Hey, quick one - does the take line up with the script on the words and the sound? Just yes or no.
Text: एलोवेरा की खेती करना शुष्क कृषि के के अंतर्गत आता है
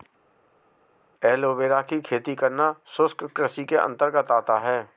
no